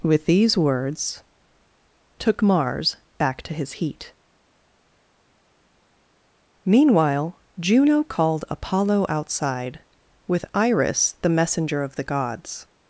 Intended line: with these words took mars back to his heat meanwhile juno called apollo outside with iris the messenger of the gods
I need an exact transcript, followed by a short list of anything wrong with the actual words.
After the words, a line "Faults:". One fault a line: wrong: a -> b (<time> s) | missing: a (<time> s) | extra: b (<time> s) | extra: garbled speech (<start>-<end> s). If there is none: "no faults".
with these words took mars back to his heat meanwhile juno called apollo outside with iris the messenger of the gods
Faults:
no faults